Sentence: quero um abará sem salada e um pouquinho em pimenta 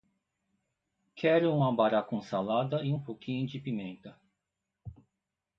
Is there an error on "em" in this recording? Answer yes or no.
yes